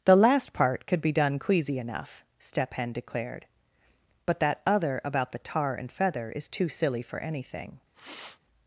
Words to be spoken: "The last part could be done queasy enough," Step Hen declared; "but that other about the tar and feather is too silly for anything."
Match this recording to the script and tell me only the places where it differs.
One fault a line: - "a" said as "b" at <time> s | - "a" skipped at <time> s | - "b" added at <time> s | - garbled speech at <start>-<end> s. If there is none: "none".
none